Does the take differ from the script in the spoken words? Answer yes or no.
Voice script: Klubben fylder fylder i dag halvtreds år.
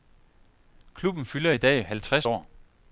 yes